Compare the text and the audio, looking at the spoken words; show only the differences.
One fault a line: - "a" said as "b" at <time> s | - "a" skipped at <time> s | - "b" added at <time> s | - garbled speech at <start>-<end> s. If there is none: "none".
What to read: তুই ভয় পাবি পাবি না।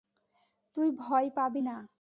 - "পাবি" skipped at 1.6 s